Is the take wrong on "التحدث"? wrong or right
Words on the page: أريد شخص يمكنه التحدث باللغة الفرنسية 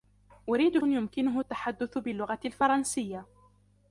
right